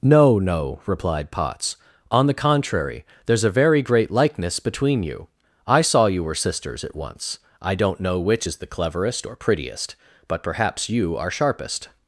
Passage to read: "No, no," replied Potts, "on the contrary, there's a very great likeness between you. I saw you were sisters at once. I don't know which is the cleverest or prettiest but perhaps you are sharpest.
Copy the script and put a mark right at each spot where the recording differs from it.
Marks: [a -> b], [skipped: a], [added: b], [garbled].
"No, no," replied Potts, "on the contrary, there's a very great likeness between you. I saw you were sisters at once. I don't know which is the cleverest or prettiest but perhaps you are sharpest.